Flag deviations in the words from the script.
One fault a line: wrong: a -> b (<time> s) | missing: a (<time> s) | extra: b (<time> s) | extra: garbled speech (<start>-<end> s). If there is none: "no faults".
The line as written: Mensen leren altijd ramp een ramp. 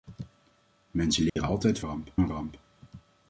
no faults